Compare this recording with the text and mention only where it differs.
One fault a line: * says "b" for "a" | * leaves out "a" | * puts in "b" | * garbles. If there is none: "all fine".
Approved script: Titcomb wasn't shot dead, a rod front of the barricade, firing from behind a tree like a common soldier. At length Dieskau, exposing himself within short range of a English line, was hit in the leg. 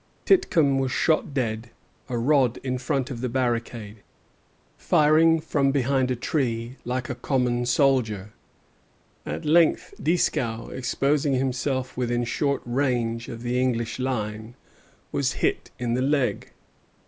* says "was" for "wasn't"
* puts in "in"
* says "the" for "a"